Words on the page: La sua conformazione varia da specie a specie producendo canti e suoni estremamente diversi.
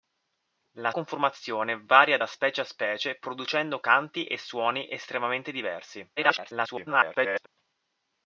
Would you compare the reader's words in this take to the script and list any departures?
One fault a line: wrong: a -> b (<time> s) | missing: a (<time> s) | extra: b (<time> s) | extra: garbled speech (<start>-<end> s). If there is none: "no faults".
missing: sua (0.9 s)
extra: garbled speech (6.2-7.5 s)